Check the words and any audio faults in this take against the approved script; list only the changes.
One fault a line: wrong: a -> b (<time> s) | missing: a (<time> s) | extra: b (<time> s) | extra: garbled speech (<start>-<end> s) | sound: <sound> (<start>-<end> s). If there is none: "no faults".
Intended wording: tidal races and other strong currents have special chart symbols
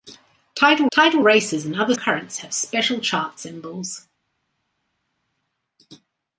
extra: tidal (0.9 s)
missing: strong (1.9 s)